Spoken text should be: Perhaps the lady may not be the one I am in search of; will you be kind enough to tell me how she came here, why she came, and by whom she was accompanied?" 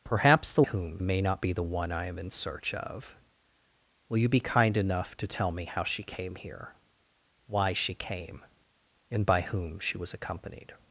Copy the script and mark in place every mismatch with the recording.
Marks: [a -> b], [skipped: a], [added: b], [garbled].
Perhaps the [lady -> whom] may not be the one I am in search of; will you be kind enough to tell me how she came here, why she came, and by whom she was accompanied?"